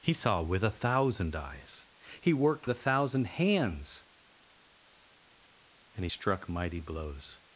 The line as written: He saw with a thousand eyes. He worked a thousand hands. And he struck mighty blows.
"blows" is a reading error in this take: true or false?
false